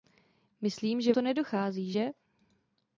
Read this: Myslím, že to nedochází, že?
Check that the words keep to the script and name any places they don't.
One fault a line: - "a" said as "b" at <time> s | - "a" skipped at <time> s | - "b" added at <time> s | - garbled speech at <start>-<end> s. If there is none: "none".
none